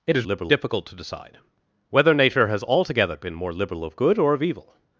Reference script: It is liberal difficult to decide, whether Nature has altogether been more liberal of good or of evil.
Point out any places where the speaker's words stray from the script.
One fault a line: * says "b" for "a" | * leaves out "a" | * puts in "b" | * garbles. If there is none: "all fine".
all fine